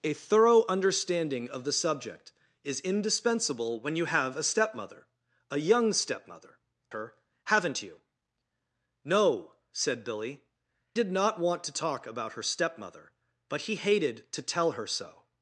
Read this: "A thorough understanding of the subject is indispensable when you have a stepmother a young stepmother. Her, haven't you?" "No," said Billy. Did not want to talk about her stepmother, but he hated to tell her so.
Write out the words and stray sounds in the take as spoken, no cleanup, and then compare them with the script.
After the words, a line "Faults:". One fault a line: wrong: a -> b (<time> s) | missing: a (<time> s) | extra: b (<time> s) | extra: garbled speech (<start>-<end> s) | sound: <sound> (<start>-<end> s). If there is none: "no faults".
"A thorough understanding of the subject is indispensable when you have a stepmother a young stepmother. Her, haven't you?" "No," said Billy. Did not want to talk about her stepmother, but he hated to tell her so.
Faults:
no faults